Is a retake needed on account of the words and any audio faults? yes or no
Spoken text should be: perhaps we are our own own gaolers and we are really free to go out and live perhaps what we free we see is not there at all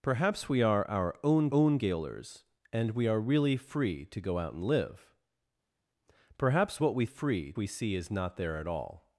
no